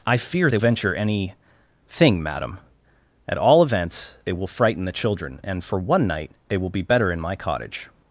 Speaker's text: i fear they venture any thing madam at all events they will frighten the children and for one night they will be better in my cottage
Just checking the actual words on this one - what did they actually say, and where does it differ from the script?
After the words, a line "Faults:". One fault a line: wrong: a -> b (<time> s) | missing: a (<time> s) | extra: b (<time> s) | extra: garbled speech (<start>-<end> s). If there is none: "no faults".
i fear they venture any thing madam at all events they will frighten the children and for one night they will be better in my cottage
Faults:
no faults